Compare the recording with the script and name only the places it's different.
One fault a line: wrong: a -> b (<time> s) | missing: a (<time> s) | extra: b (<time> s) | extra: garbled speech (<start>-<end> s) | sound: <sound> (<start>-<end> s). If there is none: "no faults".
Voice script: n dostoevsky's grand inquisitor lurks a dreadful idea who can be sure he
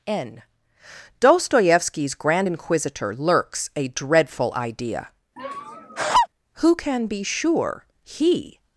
sound: laugh (5.4-6.3 s)